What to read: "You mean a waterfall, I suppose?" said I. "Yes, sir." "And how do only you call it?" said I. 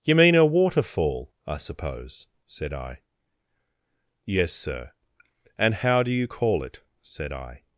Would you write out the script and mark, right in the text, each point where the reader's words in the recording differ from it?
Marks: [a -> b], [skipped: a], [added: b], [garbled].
"You mean a waterfall, I suppose?" said I. "Yes, sir." "And how do [skipped: only] you call it?" said I.